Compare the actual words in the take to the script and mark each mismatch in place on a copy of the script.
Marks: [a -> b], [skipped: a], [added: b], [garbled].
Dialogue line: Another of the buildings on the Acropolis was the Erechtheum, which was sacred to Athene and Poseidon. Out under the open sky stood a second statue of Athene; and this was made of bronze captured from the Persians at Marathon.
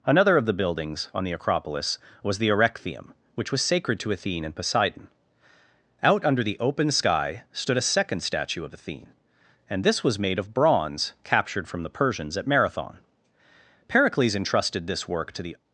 Another of the buildings on the Acropolis was the Erechtheum, which was sacred to Athene and Poseidon. Out under the open sky stood a second statue of Athene; and this was made of bronze captured from the Persians at Marathon. [added: Pericles entrusted this work to the]